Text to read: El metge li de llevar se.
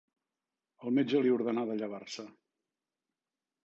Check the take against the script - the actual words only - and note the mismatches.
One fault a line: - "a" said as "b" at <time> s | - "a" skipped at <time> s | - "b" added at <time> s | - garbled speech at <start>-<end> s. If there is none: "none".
- "ordenà" added at 1.4 s